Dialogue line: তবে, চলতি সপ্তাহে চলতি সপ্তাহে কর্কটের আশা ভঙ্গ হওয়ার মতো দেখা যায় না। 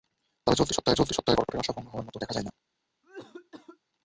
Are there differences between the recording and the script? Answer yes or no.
no